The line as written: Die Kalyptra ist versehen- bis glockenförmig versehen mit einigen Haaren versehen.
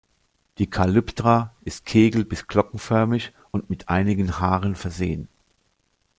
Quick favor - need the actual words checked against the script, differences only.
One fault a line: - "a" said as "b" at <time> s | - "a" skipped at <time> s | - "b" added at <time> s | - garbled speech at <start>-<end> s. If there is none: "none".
- "versehen" said as "kegel" at 1.8 s
- "versehen" said as "und" at 3.5 s